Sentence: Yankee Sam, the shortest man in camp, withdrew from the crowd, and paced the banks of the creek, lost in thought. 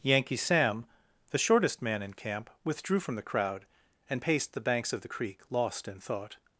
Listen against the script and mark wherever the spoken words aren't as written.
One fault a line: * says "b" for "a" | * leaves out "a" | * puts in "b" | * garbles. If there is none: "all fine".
all fine